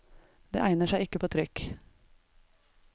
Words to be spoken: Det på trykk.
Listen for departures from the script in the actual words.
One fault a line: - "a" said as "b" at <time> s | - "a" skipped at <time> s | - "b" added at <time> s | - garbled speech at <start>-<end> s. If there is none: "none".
- "egner seg ikke" added at 0.6 s